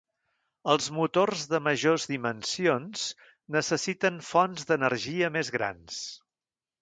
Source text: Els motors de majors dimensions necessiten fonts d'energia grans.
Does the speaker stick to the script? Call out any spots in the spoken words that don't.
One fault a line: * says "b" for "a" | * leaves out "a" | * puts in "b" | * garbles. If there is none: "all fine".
* puts in "més"